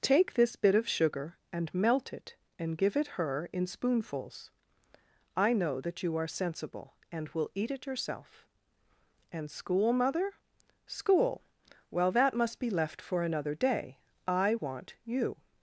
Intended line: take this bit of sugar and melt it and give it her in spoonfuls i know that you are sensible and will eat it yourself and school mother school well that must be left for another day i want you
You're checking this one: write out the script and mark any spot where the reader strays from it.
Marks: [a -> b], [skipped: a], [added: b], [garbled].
take this bit of sugar and melt it and give it her in spoonfuls i know that you are sensible and will eat it yourself and school mother school well that must be left for another day i want you